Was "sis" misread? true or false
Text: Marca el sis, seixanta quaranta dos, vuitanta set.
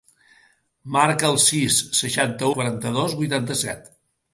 false